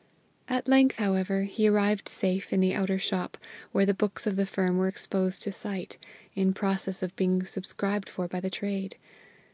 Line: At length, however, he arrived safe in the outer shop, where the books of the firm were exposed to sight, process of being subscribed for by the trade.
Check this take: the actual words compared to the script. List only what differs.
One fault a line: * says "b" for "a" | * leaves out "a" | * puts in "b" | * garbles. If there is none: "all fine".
* puts in "in"